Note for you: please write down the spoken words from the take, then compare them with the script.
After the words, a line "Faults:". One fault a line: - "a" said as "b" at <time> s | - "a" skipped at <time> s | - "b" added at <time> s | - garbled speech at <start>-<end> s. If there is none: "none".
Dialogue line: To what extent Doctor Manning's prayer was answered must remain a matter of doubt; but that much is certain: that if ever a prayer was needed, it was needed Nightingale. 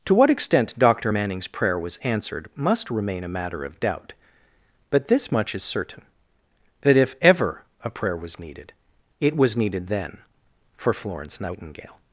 To what extent Doctor Manning's prayer was answered must remain a matter of doubt; but this much is certain: that if ever a prayer was needed, it was needed then for Florence Nightingale.
Faults:
- "that" said as "this" at 5.1 s
- "then for Florence" added at 9.9 s